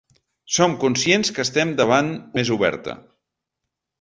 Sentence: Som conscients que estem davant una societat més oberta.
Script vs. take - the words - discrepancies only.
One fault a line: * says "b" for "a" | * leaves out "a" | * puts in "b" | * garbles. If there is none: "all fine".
* leaves out "una societat"